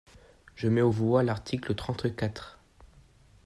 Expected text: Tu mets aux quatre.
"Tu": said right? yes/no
no